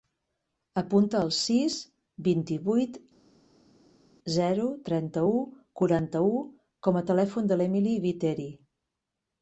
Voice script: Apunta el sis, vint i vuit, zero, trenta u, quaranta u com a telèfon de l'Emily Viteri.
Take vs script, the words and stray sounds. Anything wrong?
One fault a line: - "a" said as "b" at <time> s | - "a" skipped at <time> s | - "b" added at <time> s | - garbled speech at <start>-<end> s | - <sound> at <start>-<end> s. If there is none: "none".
none